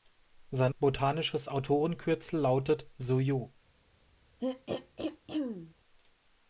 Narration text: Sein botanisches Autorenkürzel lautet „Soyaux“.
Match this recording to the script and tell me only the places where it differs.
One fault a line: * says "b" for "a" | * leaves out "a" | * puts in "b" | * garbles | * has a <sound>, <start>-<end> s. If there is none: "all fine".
* has a throat clearing, 4.4-5.7 s